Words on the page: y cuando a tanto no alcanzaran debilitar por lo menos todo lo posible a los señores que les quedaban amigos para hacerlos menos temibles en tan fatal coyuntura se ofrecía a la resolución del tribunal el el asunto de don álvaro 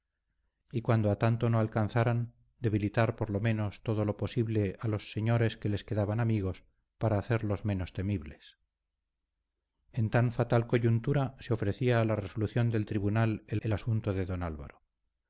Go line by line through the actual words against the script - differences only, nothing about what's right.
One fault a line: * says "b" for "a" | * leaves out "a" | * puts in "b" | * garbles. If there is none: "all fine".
all fine